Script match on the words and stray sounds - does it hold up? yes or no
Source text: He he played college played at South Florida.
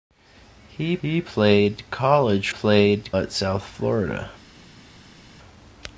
yes